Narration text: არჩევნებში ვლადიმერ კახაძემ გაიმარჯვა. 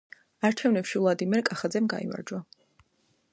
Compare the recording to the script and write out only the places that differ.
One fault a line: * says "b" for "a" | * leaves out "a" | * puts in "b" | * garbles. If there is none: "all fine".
all fine